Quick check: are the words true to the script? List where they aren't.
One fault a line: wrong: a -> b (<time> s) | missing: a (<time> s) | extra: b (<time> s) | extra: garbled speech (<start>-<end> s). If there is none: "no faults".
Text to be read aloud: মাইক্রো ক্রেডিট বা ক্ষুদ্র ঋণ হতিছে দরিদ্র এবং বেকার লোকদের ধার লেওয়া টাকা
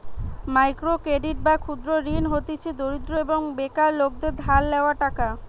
no faults